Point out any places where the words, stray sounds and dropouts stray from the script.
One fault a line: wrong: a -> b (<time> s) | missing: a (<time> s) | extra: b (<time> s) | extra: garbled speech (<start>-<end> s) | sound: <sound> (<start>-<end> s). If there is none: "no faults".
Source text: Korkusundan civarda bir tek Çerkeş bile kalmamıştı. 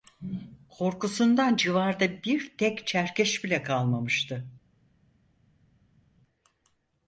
no faults